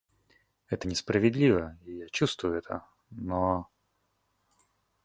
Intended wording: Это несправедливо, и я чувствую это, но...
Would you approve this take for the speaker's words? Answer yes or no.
yes